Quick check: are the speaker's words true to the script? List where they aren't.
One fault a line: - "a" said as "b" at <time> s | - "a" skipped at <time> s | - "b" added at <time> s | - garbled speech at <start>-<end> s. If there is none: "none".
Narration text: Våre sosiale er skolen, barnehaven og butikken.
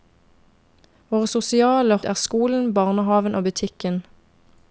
none